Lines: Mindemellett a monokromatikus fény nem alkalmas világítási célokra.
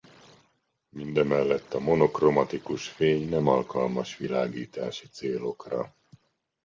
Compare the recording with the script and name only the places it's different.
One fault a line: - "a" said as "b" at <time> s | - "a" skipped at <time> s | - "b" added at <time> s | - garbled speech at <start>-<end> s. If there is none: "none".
none